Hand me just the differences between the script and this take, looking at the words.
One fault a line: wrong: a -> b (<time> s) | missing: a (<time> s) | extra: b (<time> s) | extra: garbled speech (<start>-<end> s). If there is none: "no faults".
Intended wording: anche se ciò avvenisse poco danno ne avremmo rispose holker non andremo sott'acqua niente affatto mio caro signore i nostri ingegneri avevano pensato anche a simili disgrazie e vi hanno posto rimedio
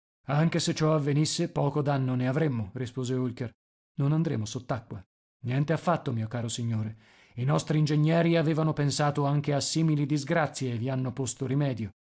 no faults